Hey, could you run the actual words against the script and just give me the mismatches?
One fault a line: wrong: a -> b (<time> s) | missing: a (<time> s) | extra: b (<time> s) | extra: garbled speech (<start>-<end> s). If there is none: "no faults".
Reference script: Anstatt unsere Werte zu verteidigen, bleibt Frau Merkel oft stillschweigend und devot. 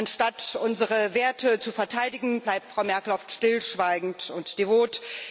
no faults